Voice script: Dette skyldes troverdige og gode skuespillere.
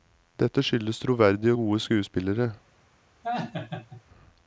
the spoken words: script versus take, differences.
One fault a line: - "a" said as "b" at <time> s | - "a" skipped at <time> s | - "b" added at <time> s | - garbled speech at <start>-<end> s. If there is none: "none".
none